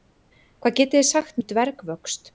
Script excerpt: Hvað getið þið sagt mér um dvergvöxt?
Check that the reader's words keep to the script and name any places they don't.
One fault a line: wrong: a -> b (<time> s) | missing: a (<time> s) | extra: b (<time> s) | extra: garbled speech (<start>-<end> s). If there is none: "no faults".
missing: mér (1.4 s)